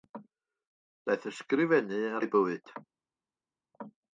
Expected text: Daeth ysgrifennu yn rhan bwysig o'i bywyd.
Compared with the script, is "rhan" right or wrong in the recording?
wrong